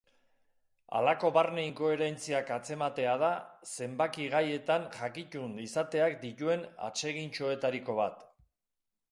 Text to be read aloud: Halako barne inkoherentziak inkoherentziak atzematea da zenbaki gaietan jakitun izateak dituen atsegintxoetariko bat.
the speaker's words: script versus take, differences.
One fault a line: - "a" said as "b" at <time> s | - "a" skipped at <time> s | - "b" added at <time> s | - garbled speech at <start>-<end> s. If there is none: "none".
- "inkoherentziak" skipped at 2.5 s